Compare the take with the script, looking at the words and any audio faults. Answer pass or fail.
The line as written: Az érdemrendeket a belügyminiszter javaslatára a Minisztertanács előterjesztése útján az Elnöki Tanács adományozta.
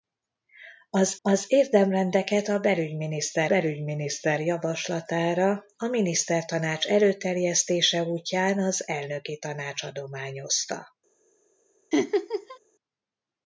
fail